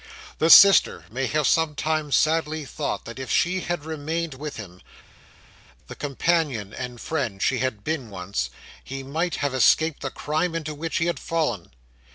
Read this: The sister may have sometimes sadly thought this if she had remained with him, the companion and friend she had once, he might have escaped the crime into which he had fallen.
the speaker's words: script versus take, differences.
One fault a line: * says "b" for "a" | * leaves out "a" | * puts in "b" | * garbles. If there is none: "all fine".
* says "that" for "this"
* puts in "been"